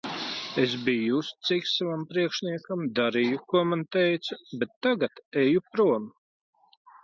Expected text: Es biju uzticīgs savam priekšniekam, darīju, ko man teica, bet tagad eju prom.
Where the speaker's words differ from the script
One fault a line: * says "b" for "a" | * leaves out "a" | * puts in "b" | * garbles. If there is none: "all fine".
all fine